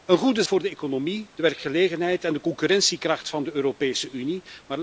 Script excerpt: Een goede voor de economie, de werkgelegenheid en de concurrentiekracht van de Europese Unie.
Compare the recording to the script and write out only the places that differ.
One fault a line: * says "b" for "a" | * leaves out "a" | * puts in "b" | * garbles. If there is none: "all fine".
all fine